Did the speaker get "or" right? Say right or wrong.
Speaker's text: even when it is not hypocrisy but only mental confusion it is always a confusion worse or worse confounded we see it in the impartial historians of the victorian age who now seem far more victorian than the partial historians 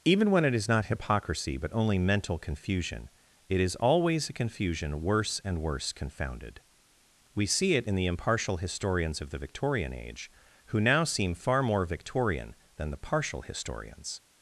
wrong